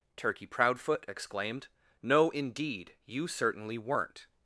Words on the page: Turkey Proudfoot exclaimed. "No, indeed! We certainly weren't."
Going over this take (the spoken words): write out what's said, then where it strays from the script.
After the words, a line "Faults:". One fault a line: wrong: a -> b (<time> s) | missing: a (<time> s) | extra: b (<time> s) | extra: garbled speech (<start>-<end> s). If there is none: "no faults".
Turkey Proudfoot exclaimed. "No, indeed! You certainly weren't."
Faults:
wrong: We -> You (3.0 s)